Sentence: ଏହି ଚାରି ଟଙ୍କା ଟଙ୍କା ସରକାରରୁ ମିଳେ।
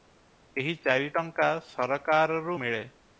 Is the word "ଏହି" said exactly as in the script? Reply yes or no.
yes